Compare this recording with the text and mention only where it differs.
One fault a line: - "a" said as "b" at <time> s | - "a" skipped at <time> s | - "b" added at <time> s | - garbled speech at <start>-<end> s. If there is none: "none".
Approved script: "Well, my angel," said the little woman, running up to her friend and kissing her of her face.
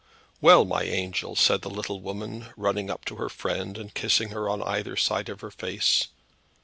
- "on either side" added at 4.5 s